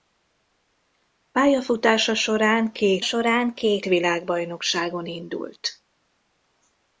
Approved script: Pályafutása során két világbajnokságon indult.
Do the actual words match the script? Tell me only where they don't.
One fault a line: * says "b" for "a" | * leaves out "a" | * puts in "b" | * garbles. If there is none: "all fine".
* puts in "során két"